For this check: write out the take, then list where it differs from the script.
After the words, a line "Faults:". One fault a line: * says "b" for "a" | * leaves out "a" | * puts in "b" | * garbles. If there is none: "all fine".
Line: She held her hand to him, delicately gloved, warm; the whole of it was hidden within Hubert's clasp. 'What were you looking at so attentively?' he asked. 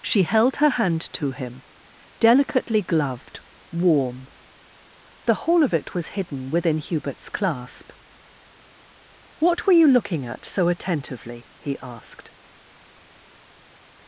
She held her hand to him, delicately gloved, warm; the whole of it was hidden within Hubert's clasp. 'What were you looking at so attentively?' he asked.
Faults:
all fine